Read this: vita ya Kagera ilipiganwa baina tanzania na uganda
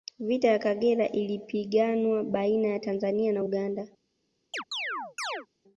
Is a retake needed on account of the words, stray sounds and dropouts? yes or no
yes